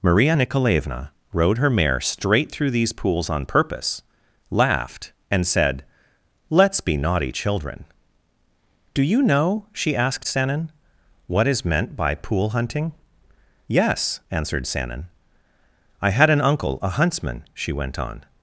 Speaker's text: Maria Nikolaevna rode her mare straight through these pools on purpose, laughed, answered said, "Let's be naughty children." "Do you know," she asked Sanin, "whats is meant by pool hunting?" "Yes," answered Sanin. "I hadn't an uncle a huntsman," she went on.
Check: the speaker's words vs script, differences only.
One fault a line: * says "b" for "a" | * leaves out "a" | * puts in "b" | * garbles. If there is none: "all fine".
* says "and" for "answered"
* says "what" for "whats"
* says "had" for "hadn't"